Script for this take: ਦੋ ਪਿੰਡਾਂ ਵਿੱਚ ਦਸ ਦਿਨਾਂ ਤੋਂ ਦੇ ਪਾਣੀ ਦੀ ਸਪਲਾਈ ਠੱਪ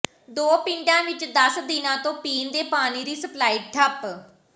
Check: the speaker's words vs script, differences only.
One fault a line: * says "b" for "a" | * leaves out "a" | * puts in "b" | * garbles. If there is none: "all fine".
* puts in "ਪੀਣ"